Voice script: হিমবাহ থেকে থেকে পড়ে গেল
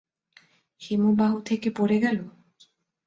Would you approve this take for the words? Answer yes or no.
no